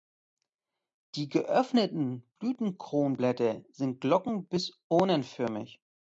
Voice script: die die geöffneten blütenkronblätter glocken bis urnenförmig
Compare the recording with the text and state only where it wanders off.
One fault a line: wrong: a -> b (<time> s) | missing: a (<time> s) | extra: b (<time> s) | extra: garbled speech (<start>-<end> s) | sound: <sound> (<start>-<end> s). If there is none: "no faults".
missing: die (1.3 s)
extra: sind (3.7 s)